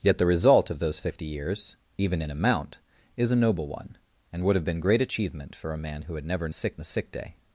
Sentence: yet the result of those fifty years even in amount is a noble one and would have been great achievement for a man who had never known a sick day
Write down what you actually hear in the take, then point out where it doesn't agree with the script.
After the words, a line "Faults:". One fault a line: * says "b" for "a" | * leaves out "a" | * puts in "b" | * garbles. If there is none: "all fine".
yet the result of those fifty years even in amount is a noble one and would have been great achievement for a man who had never sick a sick day
Faults:
* says "sick" for "known"